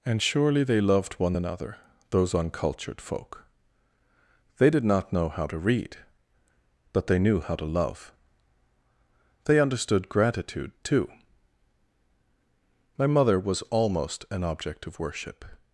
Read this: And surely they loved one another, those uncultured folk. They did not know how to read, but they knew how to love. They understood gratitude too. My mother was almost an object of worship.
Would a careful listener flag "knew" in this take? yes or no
no